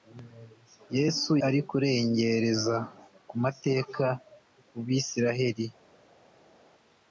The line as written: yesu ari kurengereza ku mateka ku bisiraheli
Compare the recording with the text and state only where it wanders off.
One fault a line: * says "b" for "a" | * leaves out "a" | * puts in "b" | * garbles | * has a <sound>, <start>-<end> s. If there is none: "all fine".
all fine